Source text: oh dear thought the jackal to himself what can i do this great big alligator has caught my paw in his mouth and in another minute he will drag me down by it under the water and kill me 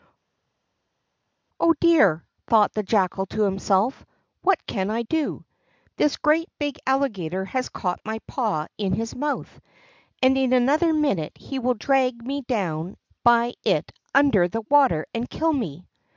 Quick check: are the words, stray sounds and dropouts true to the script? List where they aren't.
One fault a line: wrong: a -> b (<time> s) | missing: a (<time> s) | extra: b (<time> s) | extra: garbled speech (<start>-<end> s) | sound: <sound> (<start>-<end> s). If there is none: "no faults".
no faults